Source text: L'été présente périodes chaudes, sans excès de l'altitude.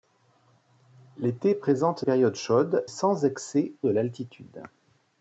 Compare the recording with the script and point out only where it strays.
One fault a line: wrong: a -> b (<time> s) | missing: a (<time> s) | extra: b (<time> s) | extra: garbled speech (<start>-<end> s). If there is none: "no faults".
no faults